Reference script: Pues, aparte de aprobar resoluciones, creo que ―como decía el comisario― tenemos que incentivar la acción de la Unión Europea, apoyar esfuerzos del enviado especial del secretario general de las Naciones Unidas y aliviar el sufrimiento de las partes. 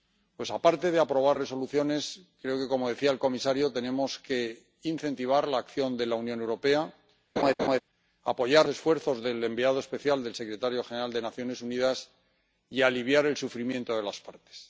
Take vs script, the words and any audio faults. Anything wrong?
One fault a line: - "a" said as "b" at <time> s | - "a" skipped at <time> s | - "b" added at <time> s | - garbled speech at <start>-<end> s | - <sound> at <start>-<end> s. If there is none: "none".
- laugh at 7.4-7.8 s